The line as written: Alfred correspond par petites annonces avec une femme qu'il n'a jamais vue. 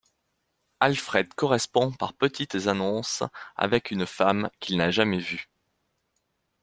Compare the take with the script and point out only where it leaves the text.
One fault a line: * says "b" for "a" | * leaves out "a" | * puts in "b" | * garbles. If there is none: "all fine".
all fine